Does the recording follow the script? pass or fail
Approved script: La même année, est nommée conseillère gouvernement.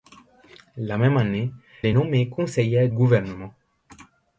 pass